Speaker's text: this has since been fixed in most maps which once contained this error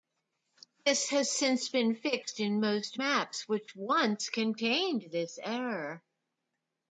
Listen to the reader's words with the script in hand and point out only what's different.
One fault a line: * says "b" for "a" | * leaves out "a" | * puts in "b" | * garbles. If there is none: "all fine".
all fine